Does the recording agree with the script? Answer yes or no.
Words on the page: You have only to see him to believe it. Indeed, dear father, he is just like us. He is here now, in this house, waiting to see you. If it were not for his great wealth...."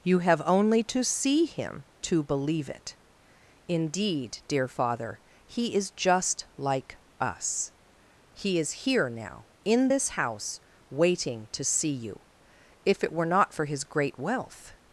yes